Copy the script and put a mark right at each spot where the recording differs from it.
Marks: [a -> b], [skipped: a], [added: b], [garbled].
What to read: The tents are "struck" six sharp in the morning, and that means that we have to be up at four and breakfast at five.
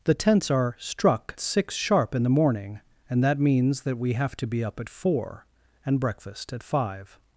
The tents are "struck" six sharp in the morning, and that means that we have to be up at four and breakfast at five.